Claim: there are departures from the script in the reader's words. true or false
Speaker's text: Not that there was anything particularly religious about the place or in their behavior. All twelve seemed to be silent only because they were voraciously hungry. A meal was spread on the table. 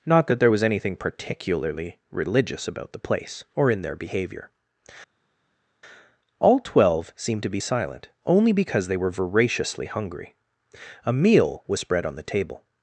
false